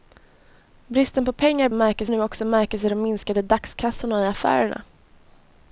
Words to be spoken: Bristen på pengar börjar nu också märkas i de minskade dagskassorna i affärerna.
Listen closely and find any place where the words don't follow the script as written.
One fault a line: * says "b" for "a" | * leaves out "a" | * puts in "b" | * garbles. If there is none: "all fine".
* says "märkas" for "börjar"